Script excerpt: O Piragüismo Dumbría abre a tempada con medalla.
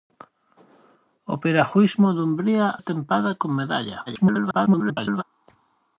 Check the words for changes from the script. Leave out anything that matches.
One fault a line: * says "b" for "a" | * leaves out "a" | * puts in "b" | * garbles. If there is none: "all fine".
* leaves out "abre"
* garbles